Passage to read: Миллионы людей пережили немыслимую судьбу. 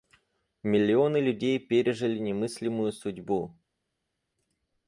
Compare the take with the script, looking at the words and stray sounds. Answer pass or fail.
pass